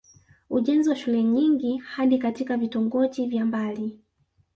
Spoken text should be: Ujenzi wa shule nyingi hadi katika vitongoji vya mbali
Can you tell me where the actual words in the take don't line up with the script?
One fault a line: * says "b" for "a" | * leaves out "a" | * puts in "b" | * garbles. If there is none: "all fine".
all fine